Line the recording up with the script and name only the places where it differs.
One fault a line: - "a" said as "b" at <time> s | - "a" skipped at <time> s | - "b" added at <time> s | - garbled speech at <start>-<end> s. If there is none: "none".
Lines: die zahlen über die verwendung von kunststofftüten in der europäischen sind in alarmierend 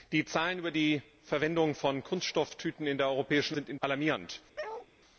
none